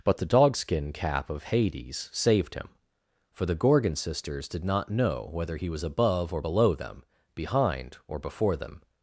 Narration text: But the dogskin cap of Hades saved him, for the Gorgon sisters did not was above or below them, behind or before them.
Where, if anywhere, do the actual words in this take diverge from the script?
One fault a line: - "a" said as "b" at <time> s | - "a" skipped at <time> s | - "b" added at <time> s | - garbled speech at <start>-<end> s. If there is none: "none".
- "know whether he" added at 4.9 s